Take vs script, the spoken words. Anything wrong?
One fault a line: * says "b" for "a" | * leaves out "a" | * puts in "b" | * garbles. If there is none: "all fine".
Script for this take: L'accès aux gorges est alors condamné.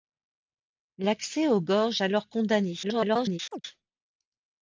* leaves out "est"
* garbles